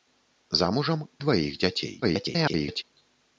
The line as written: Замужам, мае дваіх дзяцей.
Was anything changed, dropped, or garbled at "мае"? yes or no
yes